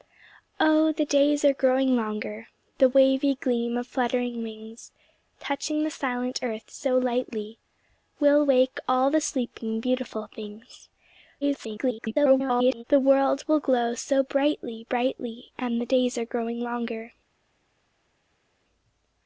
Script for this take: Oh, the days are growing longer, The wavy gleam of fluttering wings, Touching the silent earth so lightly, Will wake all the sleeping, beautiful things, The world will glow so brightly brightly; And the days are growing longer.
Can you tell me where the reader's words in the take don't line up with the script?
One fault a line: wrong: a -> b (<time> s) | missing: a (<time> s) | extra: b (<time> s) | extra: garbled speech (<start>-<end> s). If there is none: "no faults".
extra: garbled speech (11.4-12.8 s)